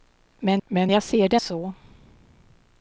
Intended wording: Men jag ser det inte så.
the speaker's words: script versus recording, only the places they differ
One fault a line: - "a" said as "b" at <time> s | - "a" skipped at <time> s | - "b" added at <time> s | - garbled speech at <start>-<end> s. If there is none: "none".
- "men" added at 0.7 s
- "inte" skipped at 1.4 s